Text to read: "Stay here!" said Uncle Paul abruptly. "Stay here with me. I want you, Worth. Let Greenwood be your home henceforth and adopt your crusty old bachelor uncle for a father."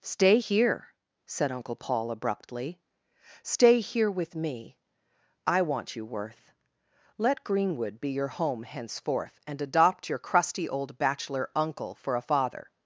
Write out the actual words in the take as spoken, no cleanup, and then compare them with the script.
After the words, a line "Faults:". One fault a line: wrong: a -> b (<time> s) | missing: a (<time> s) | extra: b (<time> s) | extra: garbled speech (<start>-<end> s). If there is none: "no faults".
"Stay here!" said Uncle Paul abruptly. "Stay here with me. I want you, Worth. Let Greenwood be your home henceforth and adopt your crusty old bachelor uncle for a father."
Faults:
no faults